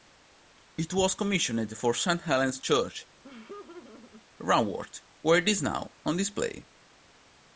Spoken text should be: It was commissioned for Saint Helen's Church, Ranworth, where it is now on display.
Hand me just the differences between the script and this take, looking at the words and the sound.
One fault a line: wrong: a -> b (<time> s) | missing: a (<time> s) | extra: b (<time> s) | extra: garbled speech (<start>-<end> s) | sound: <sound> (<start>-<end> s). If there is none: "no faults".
sound: laugh (3.2-4.2 s)